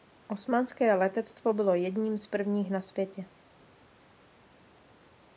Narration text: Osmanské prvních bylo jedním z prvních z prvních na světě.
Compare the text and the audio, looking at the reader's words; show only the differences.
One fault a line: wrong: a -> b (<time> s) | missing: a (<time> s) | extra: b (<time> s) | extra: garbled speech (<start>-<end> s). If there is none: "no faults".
wrong: prvních -> letectvo (0.9 s)
missing: z prvních (2.7 s)